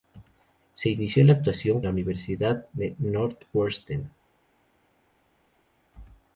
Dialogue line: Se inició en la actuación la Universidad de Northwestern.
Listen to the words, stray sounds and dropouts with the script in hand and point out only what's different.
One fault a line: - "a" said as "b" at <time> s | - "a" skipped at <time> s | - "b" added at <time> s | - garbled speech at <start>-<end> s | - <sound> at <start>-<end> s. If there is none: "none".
none